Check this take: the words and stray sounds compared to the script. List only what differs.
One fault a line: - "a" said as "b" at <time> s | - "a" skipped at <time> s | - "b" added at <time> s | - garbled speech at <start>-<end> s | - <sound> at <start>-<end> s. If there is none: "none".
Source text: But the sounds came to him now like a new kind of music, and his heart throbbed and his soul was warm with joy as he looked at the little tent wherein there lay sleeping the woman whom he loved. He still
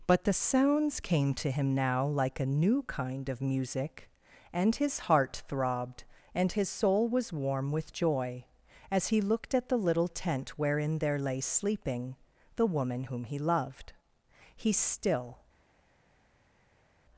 none